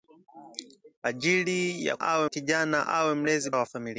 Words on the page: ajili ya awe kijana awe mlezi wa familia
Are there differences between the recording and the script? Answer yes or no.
no